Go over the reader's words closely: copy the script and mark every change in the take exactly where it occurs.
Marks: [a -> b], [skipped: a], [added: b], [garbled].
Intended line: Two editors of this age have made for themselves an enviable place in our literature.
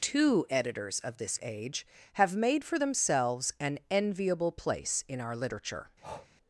Two editors of this age have made for themselves an enviable place in our literature.